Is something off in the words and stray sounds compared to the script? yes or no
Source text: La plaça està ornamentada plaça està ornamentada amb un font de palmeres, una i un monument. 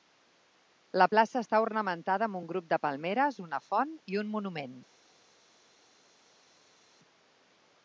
yes